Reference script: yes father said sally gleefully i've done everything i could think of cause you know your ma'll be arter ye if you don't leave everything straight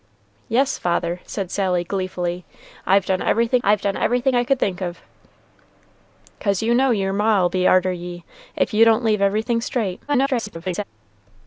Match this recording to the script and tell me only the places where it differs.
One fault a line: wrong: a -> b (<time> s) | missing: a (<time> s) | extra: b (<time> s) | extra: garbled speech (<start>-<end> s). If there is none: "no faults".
extra: i've done everything (3.6 s)
extra: garbled speech (10.1-10.8 s)